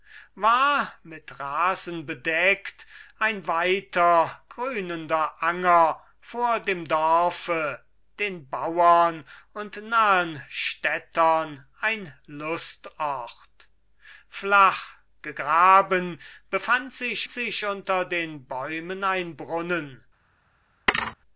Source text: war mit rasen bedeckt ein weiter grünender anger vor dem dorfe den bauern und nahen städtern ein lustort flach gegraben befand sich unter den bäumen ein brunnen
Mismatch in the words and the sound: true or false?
true